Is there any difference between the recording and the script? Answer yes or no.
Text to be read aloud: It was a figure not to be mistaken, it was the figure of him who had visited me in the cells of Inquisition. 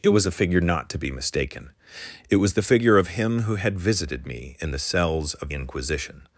no